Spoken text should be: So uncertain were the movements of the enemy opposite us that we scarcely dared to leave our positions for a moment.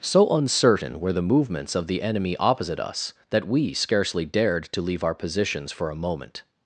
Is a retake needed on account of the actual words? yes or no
no